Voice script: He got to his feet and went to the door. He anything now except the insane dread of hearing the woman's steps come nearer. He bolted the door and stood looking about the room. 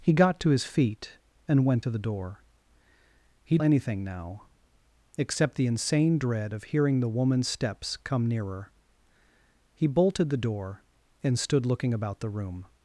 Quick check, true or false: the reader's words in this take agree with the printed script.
true